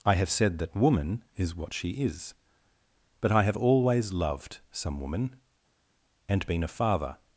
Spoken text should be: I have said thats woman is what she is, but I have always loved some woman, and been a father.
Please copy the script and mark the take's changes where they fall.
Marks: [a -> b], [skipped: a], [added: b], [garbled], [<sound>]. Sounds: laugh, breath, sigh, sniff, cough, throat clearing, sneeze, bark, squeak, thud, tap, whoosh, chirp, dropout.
I have said [thats -> that] woman is what she is, but I have always loved some woman, and been a father.